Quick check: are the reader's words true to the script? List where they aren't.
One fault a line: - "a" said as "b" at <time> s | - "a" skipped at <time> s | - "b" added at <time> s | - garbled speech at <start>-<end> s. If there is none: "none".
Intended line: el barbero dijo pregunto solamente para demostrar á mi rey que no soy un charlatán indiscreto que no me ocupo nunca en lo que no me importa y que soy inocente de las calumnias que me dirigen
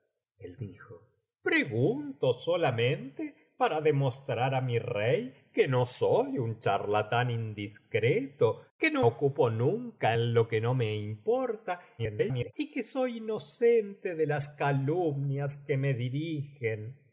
- "barbero" skipped at 0.6 s
- "me" skipped at 9.0 s
- garbled speech at 12.0-12.5 s